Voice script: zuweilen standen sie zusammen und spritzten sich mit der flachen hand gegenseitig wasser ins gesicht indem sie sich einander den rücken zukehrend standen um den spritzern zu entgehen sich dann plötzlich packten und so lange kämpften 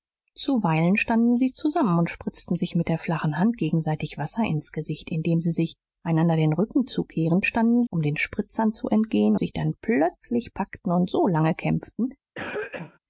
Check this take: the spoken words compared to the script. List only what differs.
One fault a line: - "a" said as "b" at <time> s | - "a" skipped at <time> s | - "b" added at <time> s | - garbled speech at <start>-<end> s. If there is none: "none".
none